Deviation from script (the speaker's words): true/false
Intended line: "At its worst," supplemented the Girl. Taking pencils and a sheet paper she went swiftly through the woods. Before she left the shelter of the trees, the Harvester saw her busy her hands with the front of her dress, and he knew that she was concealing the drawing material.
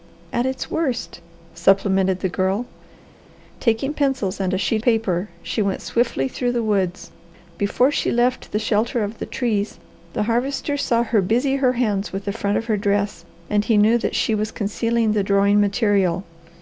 false